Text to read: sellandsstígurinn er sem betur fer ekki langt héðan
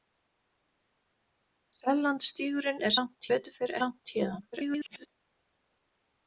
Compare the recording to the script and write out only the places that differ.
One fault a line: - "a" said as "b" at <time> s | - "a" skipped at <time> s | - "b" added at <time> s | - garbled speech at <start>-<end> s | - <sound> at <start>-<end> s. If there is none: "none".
- "sem" said as "langt" at 3.0 s
- "ekki" skipped at 3.7 s
- garbled speech at 4.5-5.1 s